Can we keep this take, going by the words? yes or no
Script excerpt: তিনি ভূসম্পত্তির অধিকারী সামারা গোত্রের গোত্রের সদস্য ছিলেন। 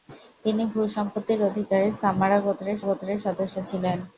yes